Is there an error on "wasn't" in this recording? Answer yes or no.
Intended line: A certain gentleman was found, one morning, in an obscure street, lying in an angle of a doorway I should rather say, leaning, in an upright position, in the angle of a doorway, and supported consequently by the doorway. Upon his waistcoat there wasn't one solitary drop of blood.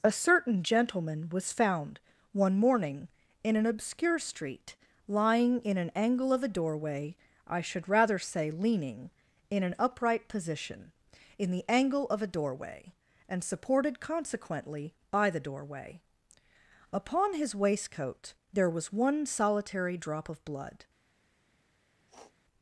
yes